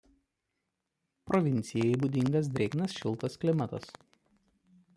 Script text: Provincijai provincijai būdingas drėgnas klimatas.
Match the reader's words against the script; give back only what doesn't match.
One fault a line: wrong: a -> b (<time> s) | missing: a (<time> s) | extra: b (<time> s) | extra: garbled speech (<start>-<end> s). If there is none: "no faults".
missing: provincijai (1.9 s)
extra: šiltas (3.0 s)